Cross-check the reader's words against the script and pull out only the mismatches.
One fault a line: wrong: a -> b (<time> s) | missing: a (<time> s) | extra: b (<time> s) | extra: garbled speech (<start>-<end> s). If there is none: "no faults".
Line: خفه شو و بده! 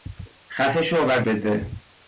no faults